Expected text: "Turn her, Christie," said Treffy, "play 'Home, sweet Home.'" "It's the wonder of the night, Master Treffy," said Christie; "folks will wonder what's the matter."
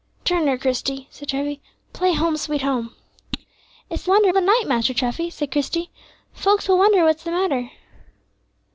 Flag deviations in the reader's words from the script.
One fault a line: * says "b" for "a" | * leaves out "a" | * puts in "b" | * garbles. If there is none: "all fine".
all fine